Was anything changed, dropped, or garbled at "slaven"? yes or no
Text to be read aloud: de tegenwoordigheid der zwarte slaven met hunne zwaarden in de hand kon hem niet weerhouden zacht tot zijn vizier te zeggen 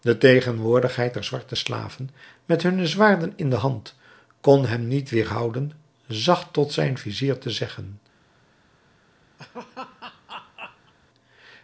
no